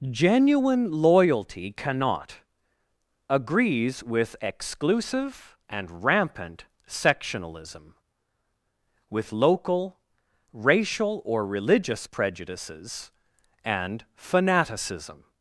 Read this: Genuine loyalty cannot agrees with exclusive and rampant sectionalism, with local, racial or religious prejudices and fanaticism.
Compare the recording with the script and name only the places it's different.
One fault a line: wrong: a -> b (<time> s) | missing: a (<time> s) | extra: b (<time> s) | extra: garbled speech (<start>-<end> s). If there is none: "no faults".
no faults